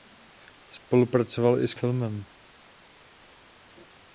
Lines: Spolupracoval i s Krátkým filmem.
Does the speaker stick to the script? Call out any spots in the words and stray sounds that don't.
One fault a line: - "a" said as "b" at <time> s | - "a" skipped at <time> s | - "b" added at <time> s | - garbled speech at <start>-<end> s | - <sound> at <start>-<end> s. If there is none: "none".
- "Krátkým" skipped at 1.7 s